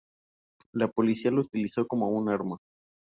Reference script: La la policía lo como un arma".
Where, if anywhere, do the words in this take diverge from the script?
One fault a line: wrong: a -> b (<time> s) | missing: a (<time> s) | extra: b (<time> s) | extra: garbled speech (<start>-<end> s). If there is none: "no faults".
missing: la (0.9 s)
extra: utilizó (1.4 s)